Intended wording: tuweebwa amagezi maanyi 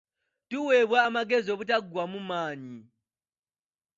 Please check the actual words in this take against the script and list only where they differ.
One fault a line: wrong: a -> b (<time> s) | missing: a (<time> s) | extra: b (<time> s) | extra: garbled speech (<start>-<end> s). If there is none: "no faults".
extra: obutaggwaamu (1.5 s)